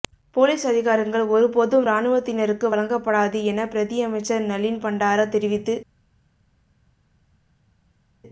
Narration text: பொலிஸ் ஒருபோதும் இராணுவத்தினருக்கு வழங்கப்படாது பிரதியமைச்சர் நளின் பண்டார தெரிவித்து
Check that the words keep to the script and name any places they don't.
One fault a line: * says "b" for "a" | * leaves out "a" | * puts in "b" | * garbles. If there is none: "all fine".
* puts in "அதிகாரங்கள்"
* puts in "என"